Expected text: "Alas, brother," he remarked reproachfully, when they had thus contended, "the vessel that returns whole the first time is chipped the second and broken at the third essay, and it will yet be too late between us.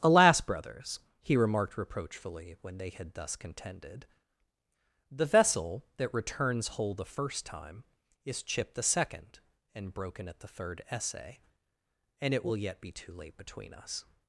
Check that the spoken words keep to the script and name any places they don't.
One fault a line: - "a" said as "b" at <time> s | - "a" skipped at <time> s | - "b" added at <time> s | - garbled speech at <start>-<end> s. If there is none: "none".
- "brother" said as "brothers" at 0.4 s